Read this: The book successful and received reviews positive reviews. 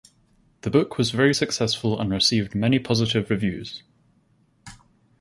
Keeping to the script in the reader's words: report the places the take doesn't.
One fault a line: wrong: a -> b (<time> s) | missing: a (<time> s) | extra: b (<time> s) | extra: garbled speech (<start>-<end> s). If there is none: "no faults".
extra: was very (1.0 s)
wrong: reviews -> many (2.5 s)